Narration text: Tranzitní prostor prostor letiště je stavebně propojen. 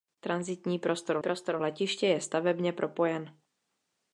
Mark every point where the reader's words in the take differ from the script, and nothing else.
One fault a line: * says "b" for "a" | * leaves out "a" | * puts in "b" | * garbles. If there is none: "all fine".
all fine